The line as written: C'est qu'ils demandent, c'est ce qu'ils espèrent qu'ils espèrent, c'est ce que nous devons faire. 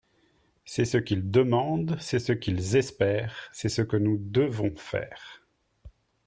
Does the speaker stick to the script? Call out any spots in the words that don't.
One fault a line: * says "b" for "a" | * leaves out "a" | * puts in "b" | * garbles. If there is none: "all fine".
* puts in "ce"
* leaves out "qu'ils espèrent"